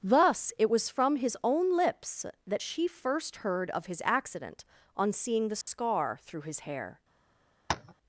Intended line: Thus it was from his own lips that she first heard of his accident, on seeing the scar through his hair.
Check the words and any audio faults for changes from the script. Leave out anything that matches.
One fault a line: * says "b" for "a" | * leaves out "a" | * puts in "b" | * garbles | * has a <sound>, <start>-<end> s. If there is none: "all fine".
* has a dropout, 5.6-5.7 s
* has a tap, 7.7-7.9 s